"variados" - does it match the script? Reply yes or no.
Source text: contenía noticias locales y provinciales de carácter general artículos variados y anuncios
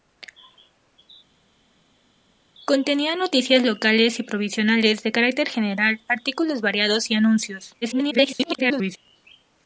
yes